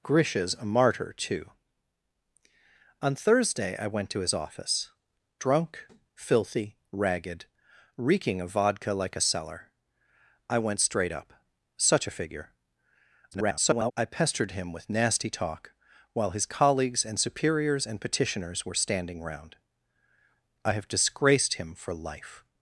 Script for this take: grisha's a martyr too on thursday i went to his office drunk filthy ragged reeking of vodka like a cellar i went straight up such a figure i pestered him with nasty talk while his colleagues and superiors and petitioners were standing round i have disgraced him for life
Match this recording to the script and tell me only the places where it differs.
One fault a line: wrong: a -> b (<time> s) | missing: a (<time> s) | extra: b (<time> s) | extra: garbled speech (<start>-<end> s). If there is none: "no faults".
extra: garbled speech (13.3-13.9 s)